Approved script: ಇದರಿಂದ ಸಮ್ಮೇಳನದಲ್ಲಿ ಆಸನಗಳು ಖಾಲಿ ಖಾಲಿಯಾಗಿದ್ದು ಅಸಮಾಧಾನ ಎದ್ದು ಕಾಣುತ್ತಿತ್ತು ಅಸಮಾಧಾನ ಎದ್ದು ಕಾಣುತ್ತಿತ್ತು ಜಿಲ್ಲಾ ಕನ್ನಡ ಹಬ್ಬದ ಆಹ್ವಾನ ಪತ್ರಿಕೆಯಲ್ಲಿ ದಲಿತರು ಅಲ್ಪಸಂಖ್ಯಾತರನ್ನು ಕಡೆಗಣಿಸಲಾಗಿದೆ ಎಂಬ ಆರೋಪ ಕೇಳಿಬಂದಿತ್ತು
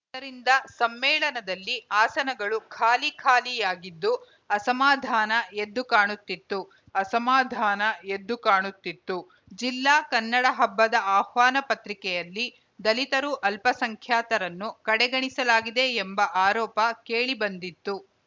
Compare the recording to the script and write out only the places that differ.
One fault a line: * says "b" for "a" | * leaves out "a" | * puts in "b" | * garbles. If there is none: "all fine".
all fine